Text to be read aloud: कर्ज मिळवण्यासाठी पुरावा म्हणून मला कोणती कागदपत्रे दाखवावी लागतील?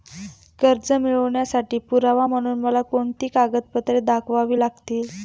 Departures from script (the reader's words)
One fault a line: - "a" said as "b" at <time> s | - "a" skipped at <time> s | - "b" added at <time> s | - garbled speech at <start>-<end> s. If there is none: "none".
none